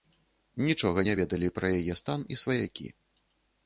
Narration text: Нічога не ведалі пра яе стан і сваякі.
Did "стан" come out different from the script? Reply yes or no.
no